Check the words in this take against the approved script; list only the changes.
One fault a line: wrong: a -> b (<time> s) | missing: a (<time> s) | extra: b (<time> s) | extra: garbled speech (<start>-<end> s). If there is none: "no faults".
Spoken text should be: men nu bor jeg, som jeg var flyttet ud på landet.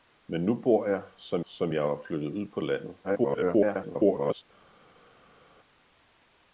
extra: som (1.4 s)
extra: garbled speech (3.0-4.4 s)